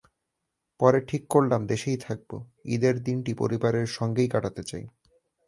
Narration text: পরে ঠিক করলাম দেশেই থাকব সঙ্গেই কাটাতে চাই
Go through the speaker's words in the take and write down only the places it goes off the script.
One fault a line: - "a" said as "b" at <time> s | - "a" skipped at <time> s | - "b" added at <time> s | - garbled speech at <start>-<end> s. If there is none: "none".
- "ঈদের দিনটি পরিবারের" added at 2.6 s